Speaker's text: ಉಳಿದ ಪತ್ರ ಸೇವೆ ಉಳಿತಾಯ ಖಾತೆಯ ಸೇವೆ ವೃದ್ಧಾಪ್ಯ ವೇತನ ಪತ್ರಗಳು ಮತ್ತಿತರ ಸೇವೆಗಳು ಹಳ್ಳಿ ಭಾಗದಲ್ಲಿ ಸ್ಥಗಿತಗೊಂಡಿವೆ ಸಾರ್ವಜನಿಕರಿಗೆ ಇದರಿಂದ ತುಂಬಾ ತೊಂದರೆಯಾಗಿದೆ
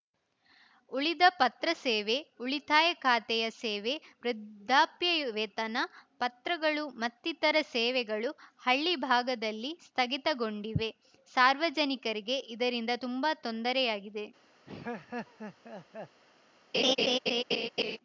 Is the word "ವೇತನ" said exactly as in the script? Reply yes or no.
yes